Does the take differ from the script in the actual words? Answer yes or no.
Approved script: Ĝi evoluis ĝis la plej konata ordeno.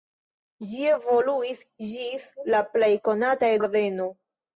no